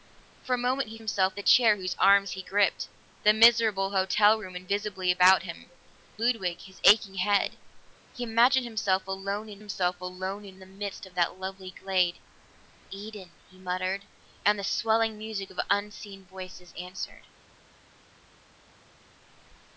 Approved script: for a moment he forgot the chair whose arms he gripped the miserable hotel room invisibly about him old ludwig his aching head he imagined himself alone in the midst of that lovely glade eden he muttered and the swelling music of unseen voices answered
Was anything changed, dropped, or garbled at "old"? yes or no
yes